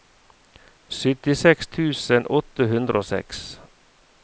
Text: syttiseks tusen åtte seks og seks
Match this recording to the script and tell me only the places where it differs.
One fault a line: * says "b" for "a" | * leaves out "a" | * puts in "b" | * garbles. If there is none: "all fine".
* says "hundre" for "seks"